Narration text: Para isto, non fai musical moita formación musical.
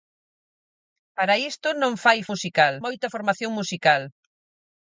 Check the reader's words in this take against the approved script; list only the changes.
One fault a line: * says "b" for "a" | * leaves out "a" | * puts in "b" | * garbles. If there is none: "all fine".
all fine